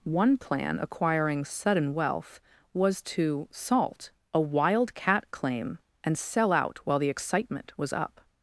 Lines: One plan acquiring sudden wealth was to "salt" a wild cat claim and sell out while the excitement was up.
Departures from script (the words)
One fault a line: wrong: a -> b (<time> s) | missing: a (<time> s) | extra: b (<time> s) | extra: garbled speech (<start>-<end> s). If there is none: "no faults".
no faults